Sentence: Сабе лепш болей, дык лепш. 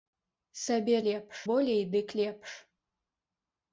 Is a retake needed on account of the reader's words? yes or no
no